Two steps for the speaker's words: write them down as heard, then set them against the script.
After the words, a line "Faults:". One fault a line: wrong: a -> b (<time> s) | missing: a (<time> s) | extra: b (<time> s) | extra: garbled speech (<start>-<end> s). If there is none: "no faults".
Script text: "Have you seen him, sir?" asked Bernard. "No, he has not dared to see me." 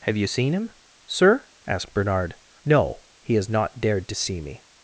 "Have you seen him, sir?" asked Bernard. "No, he has not dared to see me."
Faults:
no faults